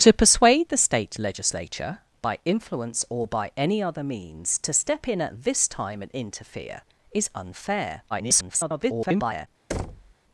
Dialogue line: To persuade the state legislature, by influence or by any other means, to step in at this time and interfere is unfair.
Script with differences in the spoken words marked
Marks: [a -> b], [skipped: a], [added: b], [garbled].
To persuade the state legislature, by influence or by any other means, to step in at this time and interfere is unfair. [garbled]